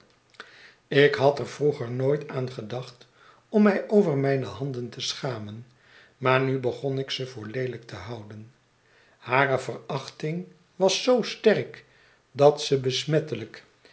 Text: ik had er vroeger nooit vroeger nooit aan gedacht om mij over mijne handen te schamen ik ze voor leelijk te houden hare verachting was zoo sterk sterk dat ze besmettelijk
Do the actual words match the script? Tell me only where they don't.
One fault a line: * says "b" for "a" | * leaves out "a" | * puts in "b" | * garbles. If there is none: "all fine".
* leaves out "vroeger nooit"
* puts in "maar nu begon"
* leaves out "sterk"